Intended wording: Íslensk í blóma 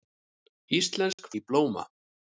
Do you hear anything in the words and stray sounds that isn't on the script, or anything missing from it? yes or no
yes